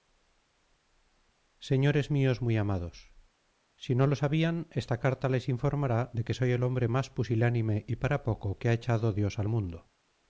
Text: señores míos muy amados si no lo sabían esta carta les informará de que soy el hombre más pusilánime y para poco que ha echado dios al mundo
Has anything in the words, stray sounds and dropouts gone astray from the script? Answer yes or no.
no